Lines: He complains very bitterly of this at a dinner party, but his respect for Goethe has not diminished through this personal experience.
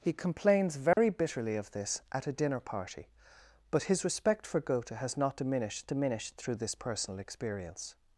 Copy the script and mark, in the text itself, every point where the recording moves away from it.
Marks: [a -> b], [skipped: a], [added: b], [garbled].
He complains very bitterly of this at a dinner party, but his respect for Goethe has not diminished [added: diminished] through this personal experience.